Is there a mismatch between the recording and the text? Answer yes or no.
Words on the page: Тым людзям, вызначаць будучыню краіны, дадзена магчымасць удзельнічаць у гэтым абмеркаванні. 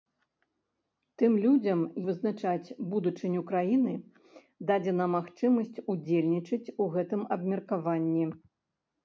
no